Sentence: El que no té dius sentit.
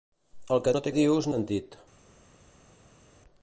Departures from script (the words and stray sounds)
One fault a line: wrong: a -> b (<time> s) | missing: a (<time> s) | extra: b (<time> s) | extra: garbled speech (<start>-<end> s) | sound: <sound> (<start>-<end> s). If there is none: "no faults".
no faults